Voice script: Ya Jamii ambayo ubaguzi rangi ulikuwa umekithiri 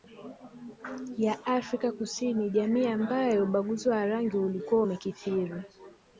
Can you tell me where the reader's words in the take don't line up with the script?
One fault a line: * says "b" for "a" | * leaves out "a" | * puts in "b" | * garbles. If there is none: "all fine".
* puts in "Afrika Kusini"
* puts in "wa"